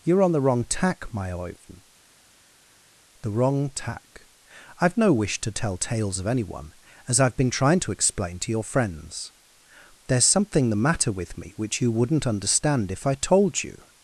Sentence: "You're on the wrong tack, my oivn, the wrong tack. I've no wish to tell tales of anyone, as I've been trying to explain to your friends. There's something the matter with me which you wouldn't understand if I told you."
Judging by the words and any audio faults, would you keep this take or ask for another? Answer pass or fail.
pass